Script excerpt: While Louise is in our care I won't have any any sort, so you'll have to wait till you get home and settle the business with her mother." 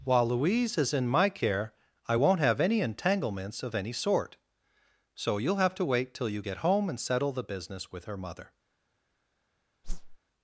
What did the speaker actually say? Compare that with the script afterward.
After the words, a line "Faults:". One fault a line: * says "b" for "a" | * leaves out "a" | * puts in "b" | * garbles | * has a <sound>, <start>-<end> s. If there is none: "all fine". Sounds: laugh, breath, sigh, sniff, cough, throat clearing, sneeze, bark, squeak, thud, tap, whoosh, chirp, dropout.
While Louise is in my care I won't have any entanglements of any sort, so you'll have to wait till you get home and settle the business with her mother."
Faults:
* says "my" for "our"
* puts in "entanglements of"
* has a whoosh, 9.8-10.2 s